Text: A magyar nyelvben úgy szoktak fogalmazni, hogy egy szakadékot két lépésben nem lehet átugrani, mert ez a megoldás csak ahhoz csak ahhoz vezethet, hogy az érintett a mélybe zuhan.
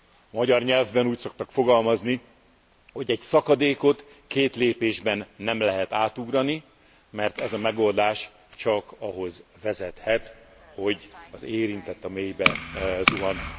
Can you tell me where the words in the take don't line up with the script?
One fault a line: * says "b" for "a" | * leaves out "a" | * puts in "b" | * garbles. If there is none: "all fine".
* leaves out "csak ahhoz"